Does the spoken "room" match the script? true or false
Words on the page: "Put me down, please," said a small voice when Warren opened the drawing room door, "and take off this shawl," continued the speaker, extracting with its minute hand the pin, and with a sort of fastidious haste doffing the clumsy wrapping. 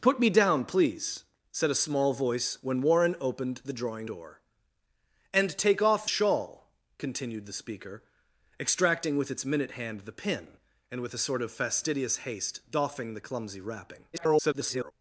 false